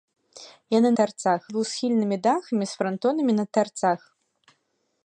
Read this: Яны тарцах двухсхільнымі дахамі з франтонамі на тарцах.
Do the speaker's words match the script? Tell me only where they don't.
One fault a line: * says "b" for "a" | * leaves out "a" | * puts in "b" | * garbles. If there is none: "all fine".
all fine